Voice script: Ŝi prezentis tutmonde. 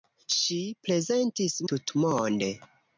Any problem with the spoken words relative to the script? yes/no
no